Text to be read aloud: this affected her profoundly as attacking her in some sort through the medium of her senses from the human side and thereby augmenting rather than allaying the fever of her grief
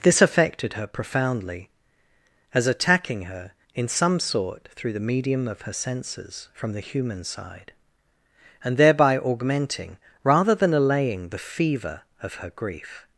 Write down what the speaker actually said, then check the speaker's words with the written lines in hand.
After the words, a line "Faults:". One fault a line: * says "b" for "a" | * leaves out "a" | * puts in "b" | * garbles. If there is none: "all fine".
this affected her profoundly as attacking her in some sort through the medium of her senses from the human side and thereby augmenting rather than allaying the fever of her grief
Faults:
all fine